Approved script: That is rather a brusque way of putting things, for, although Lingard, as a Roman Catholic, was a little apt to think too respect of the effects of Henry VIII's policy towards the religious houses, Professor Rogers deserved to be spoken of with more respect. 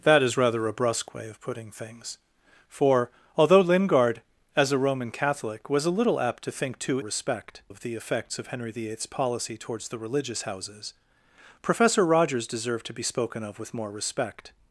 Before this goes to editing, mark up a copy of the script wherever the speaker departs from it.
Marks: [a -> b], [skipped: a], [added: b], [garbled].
That is rather a brusque way of putting things, for, although Lingard, as a Roman Catholic, was a little apt to think too respect of the effects of Henry VIII's policy towards the religious houses, Professor Rogers deserved to be spoken of with more respect.